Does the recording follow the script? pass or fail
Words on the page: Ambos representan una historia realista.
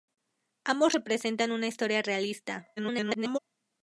fail